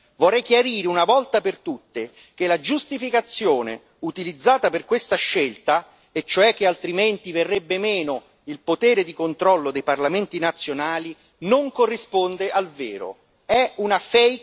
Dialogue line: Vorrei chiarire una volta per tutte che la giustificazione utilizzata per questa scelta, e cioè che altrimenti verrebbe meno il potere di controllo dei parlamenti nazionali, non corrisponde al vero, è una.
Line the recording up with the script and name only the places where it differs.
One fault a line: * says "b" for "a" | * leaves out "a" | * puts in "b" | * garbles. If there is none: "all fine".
all fine